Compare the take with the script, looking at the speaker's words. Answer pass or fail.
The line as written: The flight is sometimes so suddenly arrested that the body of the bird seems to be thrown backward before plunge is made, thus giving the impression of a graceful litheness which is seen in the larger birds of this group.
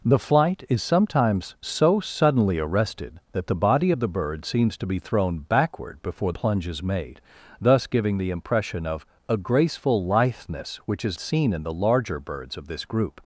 pass